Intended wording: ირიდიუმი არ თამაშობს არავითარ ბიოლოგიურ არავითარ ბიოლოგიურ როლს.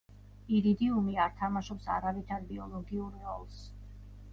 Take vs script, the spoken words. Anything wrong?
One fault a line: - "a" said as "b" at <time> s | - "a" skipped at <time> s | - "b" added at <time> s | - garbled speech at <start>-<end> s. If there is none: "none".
- "არავითარ ბიოლოგიურ" skipped at 3.2 s